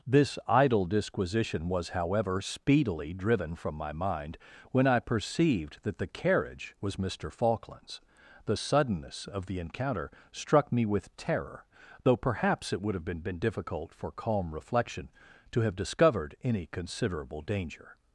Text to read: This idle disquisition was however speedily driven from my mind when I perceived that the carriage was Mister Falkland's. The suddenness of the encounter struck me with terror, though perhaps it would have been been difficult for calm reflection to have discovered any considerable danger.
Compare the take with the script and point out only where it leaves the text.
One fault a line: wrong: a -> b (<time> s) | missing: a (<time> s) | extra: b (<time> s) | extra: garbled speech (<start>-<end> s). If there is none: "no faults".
no faults